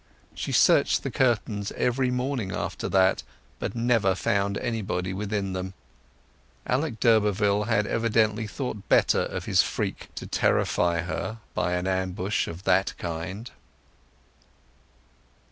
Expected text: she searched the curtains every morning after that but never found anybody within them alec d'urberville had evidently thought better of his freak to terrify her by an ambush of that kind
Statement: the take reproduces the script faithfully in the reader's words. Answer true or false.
true